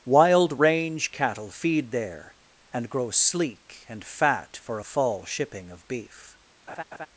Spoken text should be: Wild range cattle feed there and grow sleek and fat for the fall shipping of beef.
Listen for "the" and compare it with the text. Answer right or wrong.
wrong